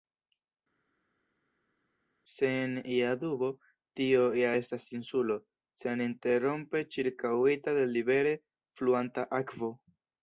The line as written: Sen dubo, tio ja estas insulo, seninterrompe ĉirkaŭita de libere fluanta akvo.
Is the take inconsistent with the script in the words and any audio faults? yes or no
yes